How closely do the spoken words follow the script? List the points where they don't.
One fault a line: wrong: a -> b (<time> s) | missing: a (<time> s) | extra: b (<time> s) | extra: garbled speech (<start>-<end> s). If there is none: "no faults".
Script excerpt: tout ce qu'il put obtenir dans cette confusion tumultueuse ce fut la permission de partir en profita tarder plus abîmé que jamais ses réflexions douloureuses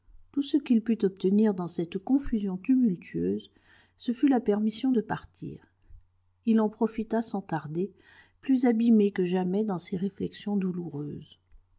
extra: il (6.4 s)
extra: sans (7.2 s)
extra: dans (9.6 s)